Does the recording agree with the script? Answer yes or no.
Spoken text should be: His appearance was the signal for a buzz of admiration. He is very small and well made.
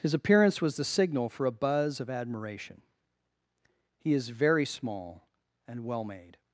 yes